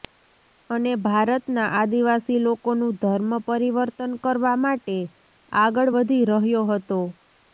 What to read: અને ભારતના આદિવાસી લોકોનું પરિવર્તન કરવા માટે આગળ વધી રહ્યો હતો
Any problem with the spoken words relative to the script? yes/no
yes